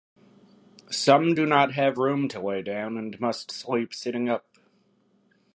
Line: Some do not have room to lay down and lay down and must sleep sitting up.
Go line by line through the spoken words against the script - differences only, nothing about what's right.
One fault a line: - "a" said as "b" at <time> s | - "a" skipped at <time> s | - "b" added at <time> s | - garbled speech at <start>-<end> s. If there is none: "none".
- "lay down and" skipped at 3.2 s